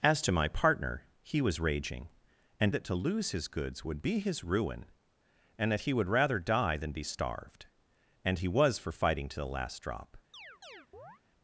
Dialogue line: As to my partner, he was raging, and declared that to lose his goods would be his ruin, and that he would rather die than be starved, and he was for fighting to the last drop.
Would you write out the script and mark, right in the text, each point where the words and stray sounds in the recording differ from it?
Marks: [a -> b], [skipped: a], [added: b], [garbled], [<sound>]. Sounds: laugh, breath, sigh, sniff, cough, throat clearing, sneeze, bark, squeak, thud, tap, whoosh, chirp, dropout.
As to my partner, he was raging, and [skipped: declared] that to lose his goods would be his ruin, and that he would rather die than be starved, and he was for fighting to the last drop. [chirp]